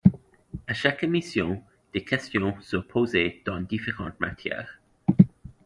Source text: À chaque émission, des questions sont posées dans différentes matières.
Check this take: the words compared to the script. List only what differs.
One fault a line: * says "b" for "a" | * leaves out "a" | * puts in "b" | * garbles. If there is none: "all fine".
all fine